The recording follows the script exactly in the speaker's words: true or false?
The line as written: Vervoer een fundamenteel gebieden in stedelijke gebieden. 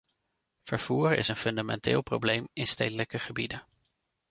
false